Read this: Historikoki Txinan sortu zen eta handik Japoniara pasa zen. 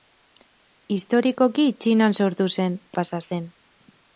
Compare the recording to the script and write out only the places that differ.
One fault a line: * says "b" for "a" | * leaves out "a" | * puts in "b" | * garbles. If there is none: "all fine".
* leaves out "eta handik Japoniara"